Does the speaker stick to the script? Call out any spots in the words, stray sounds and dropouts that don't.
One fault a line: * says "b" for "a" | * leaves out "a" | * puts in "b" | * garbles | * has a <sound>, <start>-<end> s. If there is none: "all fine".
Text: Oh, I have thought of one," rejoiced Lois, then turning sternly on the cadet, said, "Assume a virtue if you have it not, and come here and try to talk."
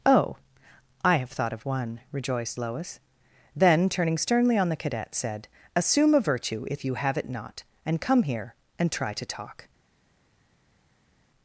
all fine